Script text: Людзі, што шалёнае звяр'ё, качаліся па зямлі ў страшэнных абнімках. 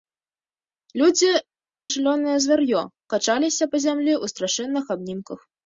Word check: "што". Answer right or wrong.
wrong